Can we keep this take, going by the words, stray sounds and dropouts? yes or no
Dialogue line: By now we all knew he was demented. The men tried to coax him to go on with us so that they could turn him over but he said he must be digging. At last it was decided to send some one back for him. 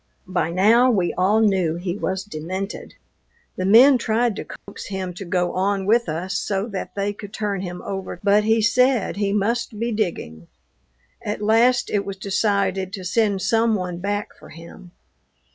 no